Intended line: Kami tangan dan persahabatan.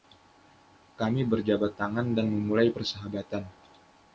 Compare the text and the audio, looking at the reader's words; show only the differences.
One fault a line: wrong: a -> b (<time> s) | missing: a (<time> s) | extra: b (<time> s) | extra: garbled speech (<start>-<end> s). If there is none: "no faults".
extra: berjabat (1.2 s)
extra: memulai (2.2 s)